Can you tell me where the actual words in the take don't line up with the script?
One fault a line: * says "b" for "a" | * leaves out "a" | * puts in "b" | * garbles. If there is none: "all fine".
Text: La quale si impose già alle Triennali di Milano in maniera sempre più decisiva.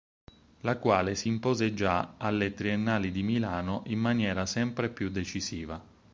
all fine